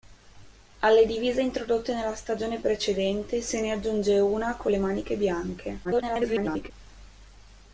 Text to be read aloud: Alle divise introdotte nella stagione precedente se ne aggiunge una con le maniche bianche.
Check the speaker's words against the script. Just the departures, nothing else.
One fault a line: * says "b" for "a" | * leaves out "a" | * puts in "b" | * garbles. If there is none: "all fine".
* garbles